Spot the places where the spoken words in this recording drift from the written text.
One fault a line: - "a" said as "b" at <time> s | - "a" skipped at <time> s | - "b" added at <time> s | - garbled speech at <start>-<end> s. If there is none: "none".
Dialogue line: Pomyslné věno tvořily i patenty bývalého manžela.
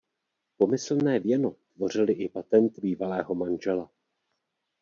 none